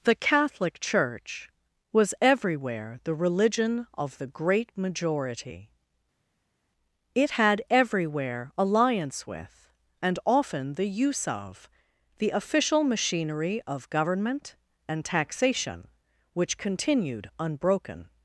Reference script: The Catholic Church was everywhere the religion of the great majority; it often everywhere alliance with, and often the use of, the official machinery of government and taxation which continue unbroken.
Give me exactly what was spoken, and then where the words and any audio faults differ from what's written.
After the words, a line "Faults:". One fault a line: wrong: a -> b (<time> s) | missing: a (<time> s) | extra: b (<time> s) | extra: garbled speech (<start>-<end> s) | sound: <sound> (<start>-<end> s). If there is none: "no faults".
The Catholic Church was everywhere the religion of the great majority; it had everywhere alliance with, and often the use of, the official machinery of government and taxation which continued unbroken.
Faults:
wrong: often -> had (7.4 s)
wrong: continue -> continued (16.6 s)